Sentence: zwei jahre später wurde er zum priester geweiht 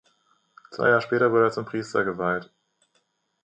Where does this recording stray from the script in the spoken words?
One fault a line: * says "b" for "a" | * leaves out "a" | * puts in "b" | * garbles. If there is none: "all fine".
all fine